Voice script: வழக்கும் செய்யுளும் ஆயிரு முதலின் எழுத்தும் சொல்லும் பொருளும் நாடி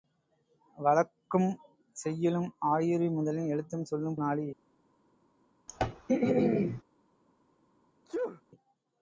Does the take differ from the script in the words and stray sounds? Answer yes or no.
yes